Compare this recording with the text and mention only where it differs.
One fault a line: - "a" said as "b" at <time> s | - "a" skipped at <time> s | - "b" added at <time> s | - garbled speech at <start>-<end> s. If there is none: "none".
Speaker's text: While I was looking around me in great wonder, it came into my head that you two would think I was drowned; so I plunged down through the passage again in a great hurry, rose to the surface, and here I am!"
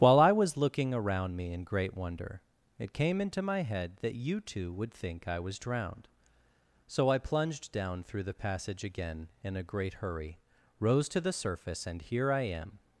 none